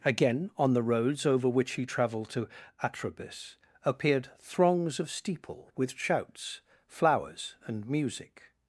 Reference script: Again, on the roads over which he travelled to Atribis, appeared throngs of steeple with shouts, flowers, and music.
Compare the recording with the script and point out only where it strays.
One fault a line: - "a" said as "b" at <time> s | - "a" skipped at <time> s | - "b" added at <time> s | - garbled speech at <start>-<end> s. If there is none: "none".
none